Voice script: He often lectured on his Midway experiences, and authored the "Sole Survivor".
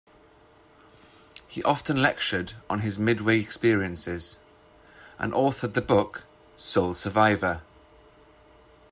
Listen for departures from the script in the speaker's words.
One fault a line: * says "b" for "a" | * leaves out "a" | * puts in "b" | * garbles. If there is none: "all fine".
* puts in "book"